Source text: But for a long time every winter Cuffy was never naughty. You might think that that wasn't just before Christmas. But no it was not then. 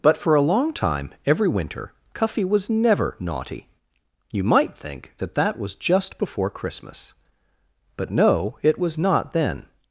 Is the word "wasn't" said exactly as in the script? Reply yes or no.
no